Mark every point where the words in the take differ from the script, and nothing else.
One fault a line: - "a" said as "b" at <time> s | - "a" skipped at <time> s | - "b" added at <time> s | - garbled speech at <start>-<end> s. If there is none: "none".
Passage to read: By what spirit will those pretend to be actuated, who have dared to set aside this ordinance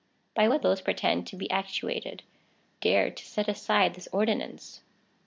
- "spirit will" skipped at 0.6 s
- "who have" skipped at 2.2 s